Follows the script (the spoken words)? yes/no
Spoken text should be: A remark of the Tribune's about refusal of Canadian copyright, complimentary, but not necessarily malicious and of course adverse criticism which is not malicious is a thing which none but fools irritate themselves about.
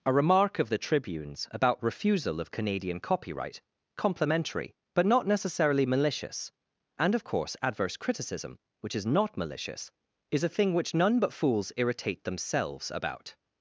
yes